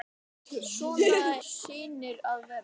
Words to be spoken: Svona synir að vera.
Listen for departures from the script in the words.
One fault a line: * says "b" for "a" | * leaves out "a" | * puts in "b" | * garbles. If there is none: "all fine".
all fine